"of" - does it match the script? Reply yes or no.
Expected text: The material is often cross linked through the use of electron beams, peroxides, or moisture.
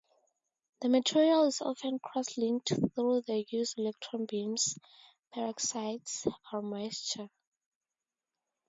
no